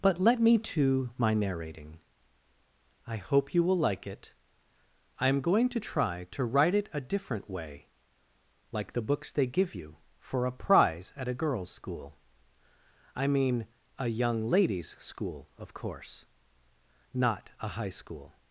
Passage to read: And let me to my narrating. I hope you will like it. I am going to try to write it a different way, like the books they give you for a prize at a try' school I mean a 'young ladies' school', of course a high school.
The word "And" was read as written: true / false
false